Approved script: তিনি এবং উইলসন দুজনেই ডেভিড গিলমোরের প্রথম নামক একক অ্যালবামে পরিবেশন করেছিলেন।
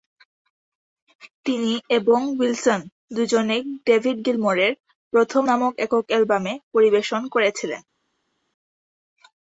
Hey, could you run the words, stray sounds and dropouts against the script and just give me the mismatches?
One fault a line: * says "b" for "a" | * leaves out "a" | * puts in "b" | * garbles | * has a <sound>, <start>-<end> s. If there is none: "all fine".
all fine